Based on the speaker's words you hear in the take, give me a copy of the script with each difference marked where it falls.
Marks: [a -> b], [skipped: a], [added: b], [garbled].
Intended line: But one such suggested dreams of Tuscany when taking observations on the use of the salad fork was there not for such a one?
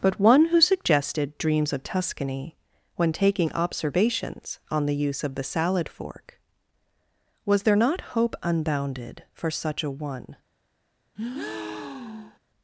But one [such -> who] suggested dreams of Tuscany when taking observations on the use of the salad fork was there not [added: hope unbounded] for such a one?